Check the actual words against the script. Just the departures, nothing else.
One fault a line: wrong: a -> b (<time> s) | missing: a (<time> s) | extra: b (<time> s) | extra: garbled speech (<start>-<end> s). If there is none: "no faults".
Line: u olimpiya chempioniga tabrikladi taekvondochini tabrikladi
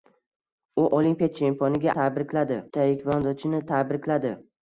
no faults